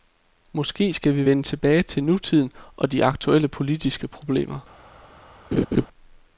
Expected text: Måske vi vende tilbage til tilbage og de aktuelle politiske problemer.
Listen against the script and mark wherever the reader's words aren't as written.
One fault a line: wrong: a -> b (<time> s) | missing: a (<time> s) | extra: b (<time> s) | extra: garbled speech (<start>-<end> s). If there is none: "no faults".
extra: skal (0.9 s)
wrong: tilbage -> nutiden (2.0 s)